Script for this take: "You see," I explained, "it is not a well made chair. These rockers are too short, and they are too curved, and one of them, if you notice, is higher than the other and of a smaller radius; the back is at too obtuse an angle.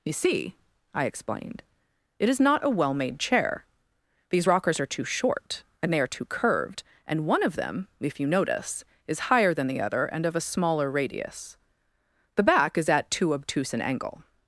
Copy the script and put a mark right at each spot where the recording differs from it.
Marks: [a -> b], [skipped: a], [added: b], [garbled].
"You see," I explained, "it is not a well made chair. These rockers are too short, and they are too curved, and one of them, if you notice, is higher than the other and of a smaller radius; the back is at too obtuse an angle.